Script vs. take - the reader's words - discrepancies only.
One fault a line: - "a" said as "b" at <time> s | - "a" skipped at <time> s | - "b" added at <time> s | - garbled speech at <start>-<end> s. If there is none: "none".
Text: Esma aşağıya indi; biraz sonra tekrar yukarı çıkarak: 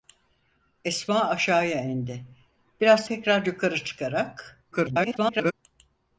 - "sonra" skipped at 3.0 s
- garbled speech at 4.7-5.5 s